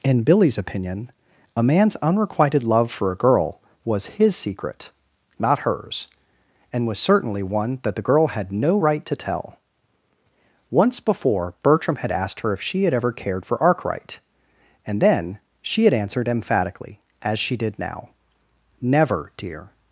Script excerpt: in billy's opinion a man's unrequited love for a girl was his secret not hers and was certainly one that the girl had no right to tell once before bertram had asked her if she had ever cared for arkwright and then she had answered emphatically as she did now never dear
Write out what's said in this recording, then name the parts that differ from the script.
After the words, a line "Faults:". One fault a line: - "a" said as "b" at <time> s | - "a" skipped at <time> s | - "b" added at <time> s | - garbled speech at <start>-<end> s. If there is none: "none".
in billy's opinion a man's unrequited love for a girl was his secret not hers and was certainly one that the girl had no right to tell once before bertram had asked her if she had ever cared for arkwright and then she had answered emphatically as she did now never dear
Faults:
none